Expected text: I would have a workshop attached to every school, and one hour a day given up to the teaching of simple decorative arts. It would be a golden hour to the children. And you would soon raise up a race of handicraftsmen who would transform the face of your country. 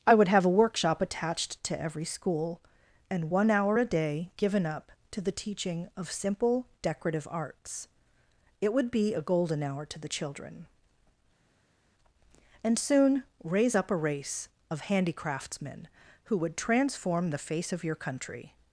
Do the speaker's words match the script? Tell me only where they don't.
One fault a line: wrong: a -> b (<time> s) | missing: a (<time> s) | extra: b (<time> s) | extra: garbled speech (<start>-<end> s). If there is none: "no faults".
missing: you would (12.8 s)